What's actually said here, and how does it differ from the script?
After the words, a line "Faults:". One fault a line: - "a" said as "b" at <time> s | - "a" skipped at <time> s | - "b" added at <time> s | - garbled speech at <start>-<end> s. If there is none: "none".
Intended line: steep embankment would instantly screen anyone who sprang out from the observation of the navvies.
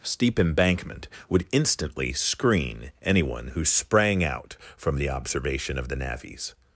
steep embankment would instantly screen anyone who sprang out from the observation of the navvies.
Faults:
none